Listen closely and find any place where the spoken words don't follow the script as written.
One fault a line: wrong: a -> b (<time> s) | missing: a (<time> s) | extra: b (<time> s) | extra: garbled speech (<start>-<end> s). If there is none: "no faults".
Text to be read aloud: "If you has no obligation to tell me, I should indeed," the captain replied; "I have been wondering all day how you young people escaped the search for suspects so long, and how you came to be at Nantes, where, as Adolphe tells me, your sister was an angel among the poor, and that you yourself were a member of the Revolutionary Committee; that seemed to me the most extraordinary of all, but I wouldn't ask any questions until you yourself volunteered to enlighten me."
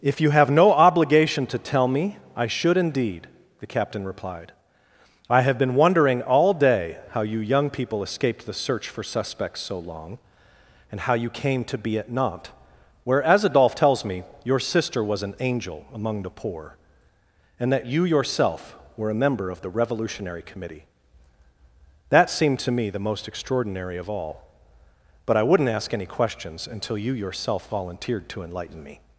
wrong: has -> have (0.3 s)